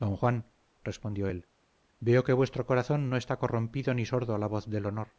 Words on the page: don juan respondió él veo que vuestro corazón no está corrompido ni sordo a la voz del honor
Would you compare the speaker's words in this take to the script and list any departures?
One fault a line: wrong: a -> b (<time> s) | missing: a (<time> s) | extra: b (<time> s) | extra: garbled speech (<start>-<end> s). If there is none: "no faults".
no faults